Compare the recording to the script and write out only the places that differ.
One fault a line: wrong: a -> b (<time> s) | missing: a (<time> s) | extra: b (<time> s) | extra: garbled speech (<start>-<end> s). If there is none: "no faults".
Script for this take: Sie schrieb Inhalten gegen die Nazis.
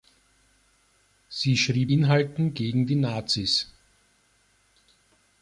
no faults